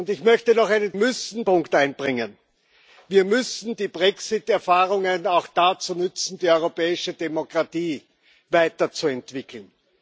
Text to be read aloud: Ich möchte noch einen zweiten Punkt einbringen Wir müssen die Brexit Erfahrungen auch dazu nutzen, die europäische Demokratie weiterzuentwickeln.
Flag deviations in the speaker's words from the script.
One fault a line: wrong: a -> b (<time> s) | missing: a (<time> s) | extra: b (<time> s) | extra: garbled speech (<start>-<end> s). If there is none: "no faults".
wrong: zweiten -> müssen (0.9 s)